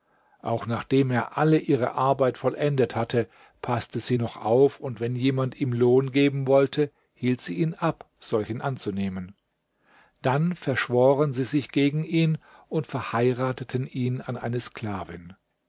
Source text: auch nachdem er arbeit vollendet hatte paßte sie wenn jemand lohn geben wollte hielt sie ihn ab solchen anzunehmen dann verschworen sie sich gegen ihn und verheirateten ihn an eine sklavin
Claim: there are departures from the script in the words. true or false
true